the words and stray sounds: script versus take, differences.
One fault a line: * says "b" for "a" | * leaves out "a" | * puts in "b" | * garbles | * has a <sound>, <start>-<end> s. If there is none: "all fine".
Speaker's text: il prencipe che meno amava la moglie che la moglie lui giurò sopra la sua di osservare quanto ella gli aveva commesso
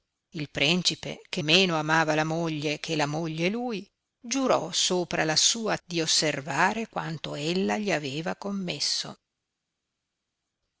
all fine